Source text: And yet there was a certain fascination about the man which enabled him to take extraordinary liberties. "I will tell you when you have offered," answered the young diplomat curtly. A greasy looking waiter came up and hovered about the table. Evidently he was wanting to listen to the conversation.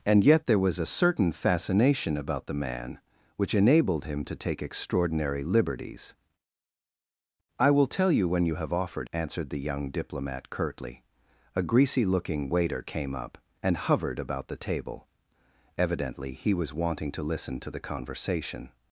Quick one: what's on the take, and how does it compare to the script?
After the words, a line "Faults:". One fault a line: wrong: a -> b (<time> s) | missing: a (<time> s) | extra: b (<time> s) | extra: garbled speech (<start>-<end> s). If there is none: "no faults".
And yet there was a certain fascination about the man which enabled him to take extraordinary liberties. "I will tell you when you have offered," answered the young diplomat curtly. A greasy looking waiter came up and hovered about the table. Evidently he was wanting to listen to the conversation.
Faults:
no faults